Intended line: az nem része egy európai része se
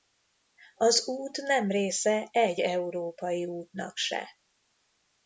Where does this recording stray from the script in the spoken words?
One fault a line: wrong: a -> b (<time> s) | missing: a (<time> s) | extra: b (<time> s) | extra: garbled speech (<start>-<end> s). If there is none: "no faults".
extra: út (1.1 s)
wrong: része -> útnak (3.4 s)